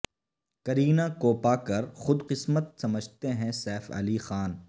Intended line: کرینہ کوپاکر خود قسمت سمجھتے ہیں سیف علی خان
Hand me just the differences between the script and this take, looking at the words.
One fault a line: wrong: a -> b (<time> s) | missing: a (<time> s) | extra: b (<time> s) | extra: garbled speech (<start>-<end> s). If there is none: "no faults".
no faults